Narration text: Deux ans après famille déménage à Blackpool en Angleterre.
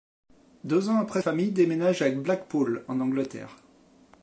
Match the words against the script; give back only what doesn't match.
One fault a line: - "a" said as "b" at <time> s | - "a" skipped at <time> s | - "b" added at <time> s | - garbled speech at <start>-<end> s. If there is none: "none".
none